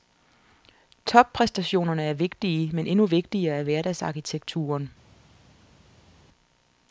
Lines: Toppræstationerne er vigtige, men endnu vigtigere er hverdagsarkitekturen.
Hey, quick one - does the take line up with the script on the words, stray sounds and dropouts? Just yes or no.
yes